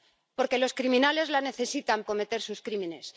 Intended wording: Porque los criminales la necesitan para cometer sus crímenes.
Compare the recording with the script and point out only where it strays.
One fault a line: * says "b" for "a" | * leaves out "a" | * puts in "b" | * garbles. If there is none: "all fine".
* leaves out "para"